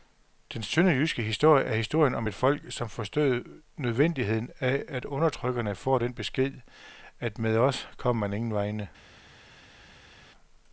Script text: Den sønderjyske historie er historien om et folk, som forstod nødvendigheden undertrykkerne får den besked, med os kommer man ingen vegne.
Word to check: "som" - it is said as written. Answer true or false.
true